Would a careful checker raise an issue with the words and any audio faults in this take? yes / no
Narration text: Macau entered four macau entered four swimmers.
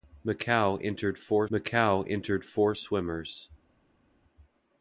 no